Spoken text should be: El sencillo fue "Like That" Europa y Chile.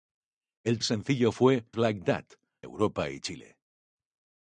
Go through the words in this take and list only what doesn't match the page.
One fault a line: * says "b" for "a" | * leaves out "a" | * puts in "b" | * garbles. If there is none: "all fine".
all fine